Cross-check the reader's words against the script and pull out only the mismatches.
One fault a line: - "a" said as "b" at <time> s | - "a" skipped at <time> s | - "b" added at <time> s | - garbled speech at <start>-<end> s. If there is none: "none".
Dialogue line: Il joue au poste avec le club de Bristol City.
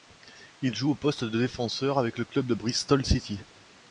- "de défenseur" added at 1.2 s